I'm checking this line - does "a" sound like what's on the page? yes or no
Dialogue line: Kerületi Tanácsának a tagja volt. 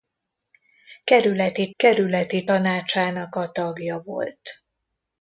yes